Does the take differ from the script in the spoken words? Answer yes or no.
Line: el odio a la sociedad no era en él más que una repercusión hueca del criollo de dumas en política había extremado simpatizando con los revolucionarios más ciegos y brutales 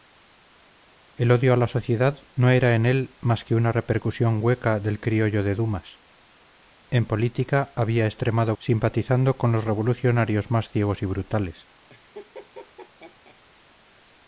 no